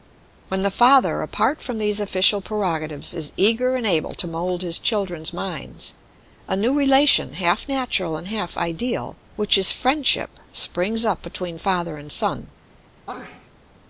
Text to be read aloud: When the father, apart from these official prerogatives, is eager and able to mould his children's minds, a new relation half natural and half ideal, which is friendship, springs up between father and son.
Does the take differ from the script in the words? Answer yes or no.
no